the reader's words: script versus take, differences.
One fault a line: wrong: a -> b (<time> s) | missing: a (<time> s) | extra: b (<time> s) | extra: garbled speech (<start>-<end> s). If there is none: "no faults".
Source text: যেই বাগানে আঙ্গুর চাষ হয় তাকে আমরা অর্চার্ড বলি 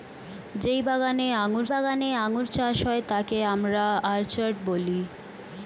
extra: বাগানে আঙ্গুর (1.7 s)